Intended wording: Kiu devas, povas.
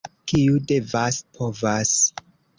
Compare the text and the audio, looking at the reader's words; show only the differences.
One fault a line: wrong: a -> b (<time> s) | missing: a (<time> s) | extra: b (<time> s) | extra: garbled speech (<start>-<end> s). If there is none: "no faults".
no faults